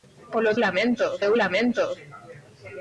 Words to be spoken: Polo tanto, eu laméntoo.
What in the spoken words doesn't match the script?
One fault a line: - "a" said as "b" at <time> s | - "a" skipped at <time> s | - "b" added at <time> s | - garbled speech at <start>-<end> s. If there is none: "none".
- "tanto" said as "laméntoo" at 0.6 s